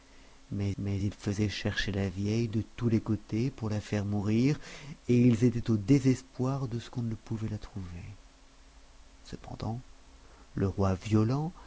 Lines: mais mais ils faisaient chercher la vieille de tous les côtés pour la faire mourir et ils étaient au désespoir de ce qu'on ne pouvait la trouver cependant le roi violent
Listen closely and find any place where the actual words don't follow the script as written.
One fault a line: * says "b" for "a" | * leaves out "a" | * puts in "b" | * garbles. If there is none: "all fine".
all fine